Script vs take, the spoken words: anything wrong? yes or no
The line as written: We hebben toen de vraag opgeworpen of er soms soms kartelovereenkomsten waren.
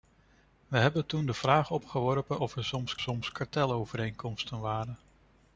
no